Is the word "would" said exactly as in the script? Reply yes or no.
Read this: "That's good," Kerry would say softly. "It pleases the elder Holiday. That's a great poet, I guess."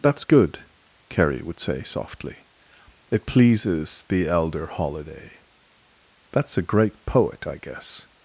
yes